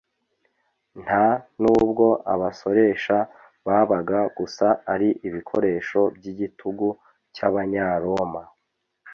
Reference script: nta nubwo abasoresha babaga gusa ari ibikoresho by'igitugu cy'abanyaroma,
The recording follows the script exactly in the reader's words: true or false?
true